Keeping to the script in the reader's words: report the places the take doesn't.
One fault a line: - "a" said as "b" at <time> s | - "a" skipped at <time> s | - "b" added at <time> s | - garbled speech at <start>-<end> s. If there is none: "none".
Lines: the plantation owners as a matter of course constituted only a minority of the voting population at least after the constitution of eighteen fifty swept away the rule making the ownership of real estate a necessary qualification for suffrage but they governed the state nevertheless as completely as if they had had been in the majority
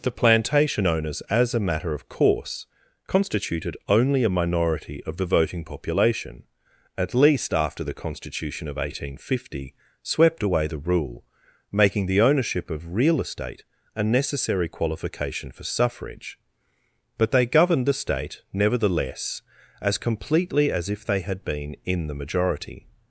- "had" skipped at 21.4 s